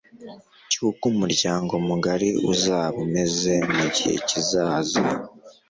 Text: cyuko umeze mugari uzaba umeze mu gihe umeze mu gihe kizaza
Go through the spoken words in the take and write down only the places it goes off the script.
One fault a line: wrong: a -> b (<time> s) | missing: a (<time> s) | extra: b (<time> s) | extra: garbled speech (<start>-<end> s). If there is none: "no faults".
wrong: umeze -> umuryango (1.1 s)
missing: umeze mu gihe (4.1 s)